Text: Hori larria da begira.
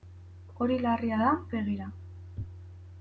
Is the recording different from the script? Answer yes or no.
no